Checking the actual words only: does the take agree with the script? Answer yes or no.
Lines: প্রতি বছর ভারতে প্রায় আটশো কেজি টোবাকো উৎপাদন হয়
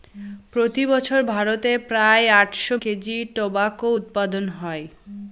yes